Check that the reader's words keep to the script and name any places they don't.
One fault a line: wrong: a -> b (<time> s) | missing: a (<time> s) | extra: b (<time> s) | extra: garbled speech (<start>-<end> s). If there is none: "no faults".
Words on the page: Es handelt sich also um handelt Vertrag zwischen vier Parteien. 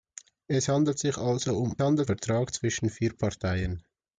no faults